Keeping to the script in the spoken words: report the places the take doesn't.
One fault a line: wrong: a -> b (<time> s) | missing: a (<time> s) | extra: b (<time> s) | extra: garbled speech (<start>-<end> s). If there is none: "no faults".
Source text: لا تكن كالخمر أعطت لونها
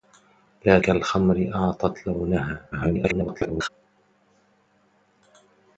missing: تكن (0.8 s)
extra: garbled speech (2.7-3.7 s)